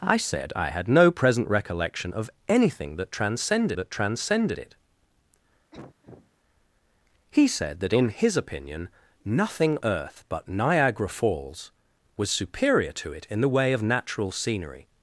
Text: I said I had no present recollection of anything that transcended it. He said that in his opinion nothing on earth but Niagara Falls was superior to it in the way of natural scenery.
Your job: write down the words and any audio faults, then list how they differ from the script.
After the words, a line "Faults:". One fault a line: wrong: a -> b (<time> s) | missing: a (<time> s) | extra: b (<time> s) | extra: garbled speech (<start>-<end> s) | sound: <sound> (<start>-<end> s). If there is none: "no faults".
I said I had no present recollection of anything that transcended that transcended it. He said that in his opinion nothing earth but Niagara Falls was superior to it in the way of natural scenery.
Faults:
extra: that transcended (3.7 s)
sound: cough (5.7-6.3 s)
missing: on (9.8 s)